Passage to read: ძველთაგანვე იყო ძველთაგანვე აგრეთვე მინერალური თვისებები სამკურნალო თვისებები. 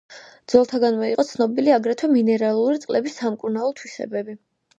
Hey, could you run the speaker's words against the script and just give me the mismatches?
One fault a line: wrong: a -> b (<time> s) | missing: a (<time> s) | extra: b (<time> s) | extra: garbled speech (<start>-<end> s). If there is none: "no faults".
wrong: ძველთაგანვე -> ცნობილი (1.3 s)
wrong: თვისებები -> წყლების (2.8 s)